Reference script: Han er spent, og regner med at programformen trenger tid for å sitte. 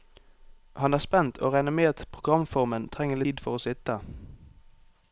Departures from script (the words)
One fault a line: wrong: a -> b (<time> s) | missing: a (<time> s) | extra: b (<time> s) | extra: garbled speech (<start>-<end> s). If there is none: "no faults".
no faults